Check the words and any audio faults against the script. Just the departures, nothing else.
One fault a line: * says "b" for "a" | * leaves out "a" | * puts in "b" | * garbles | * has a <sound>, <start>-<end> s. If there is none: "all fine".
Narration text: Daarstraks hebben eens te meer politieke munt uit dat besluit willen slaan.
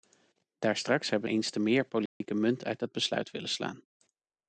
* has a dropout, 2.1-2.2 s